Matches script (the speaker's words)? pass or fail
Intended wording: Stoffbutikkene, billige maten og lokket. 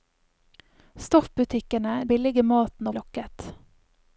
pass